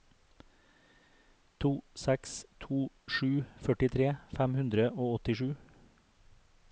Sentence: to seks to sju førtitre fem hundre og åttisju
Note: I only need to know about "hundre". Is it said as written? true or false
true